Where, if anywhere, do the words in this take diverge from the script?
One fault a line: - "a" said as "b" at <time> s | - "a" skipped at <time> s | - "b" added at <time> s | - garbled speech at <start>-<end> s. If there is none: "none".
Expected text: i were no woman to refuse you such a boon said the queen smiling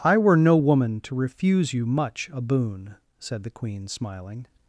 - "such" said as "much" at 1.9 s